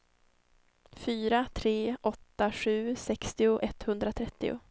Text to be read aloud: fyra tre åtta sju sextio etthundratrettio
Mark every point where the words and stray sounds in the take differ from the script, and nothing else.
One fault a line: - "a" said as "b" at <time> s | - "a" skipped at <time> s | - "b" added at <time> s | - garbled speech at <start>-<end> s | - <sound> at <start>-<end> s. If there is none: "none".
none